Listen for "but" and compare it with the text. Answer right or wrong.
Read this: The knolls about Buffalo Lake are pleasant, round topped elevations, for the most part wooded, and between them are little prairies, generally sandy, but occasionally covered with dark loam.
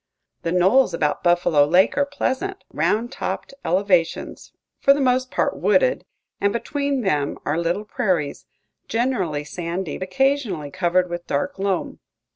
wrong